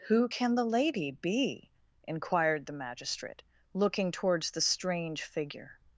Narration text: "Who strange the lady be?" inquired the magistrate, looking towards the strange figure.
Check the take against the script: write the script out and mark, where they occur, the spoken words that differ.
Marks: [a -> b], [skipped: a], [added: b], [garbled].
"Who [strange -> can] the lady be?" inquired the magistrate, looking towards the strange figure.